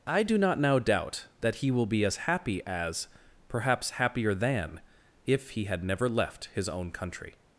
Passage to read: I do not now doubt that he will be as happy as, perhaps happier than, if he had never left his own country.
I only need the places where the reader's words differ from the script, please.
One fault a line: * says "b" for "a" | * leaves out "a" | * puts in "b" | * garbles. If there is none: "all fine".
all fine